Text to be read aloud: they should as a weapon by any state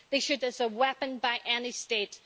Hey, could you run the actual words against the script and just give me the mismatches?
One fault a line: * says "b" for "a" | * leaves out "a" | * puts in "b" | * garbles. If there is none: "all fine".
all fine